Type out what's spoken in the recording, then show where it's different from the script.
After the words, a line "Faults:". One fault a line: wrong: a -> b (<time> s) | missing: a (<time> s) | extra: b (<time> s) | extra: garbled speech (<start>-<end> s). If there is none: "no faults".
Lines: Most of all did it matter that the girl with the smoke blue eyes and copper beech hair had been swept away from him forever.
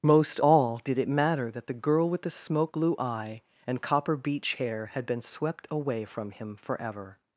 Most all did it matter that the girl with the smoke blue eye and copper beech hair had been swept away from him forever.
Faults:
missing: of (0.4 s)
wrong: eyes -> eye (3.0 s)